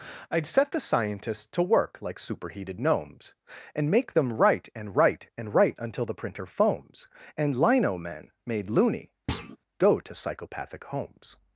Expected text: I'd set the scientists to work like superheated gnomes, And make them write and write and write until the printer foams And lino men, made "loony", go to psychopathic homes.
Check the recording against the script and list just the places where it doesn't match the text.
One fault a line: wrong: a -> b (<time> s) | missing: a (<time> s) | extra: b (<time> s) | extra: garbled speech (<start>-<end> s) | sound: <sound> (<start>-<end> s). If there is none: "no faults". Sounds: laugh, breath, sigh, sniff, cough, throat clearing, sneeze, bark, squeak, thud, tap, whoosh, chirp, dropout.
sound: thud (9.3-9.6 s)